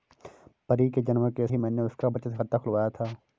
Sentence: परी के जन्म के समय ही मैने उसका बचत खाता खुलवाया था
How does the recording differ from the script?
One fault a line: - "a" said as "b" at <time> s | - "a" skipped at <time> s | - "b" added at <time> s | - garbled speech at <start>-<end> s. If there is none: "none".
- "समय" skipped at 1.5 s